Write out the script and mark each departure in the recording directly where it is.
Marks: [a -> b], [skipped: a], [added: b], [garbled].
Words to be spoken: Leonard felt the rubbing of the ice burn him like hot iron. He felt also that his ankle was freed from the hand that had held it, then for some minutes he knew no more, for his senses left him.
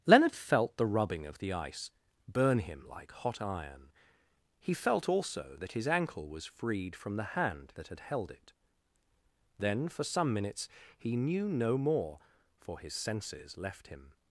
Leonard felt the rubbing of the ice burn him like hot iron. He felt also that his ankle was freed from the hand that had held it, then for some minutes he knew no more, for his senses left him.